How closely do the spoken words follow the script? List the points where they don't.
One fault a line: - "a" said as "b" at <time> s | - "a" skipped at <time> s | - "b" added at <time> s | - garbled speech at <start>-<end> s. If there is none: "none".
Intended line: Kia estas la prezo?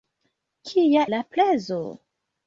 - "estas" skipped at 1.0 s